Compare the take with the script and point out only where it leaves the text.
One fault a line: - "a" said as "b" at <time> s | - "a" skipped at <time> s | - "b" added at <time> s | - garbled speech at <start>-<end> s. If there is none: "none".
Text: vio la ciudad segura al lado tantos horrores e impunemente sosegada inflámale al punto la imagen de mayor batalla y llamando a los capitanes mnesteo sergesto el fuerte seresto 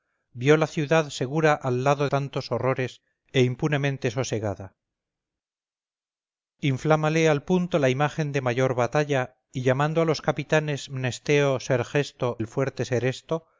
none